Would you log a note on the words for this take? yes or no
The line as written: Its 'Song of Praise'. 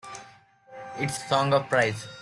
no